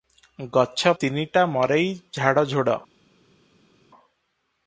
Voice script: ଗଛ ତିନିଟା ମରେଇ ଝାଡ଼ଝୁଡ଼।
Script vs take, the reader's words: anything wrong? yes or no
no